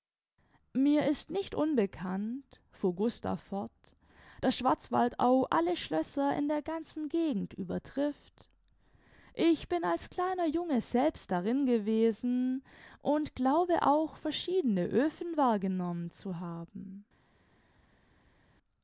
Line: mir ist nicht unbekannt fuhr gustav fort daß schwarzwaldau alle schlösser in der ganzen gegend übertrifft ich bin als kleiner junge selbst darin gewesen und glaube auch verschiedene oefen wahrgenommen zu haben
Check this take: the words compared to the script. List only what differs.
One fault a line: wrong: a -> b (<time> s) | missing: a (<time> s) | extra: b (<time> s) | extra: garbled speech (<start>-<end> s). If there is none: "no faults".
no faults